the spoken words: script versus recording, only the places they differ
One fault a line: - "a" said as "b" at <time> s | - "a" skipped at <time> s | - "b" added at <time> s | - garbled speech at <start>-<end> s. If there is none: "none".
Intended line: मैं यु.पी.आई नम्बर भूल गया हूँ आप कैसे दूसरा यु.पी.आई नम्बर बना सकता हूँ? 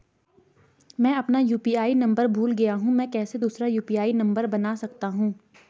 - "अपना" added at 1.1 s
- "आप" said as "मैं" at 2.9 s